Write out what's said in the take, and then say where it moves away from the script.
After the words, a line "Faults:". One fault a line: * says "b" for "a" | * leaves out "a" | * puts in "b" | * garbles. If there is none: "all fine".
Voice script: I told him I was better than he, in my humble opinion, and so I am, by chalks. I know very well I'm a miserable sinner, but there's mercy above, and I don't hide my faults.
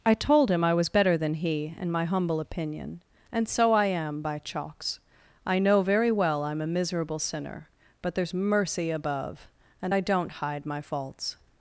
I told him I was better than he, in my humble opinion, and so I am, by chalks. I know very well I'm a miserable sinner, but there's mercy above, and I don't hide my faults.
Faults:
all fine